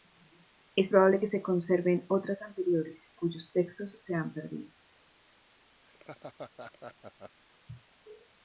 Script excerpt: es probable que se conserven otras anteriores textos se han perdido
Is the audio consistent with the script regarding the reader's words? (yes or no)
no